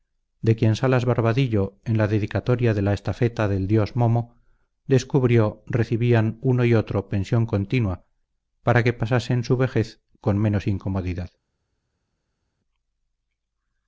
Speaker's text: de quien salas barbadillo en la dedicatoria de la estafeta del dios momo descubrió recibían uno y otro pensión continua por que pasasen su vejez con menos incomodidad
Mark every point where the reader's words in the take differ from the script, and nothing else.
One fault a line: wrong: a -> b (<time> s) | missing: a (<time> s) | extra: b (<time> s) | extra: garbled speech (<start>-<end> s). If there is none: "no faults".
wrong: por -> para (8.6 s)